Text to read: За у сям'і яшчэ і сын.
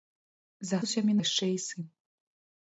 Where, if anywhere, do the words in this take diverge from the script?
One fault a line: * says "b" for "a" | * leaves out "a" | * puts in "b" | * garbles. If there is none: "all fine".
all fine